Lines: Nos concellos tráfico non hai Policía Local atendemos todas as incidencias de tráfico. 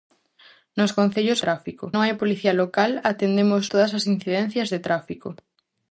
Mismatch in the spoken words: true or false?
false